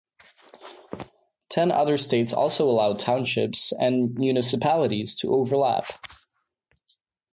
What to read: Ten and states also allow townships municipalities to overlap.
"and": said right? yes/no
no